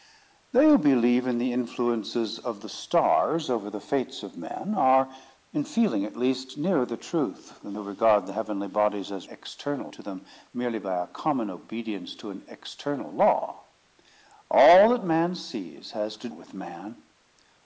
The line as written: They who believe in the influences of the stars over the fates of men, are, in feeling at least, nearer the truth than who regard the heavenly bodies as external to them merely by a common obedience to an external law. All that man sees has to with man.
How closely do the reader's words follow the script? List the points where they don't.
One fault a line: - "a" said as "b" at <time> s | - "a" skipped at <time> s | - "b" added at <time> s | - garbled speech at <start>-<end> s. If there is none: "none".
none